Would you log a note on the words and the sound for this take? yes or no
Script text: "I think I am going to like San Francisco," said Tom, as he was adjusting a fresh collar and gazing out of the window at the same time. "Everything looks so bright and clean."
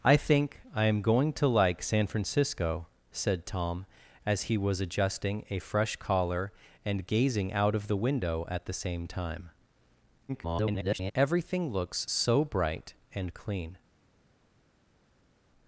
yes